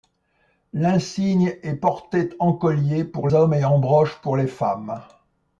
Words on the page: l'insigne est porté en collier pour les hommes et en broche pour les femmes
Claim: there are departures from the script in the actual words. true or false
true